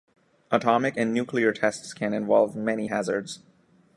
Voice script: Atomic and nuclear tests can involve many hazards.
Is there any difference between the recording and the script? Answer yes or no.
no